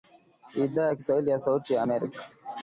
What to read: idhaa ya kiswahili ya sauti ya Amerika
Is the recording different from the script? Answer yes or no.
no